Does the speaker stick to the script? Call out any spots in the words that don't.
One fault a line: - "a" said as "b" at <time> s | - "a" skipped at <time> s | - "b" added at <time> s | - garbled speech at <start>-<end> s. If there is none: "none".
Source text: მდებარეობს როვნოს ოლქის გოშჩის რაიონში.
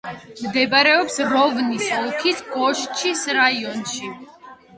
none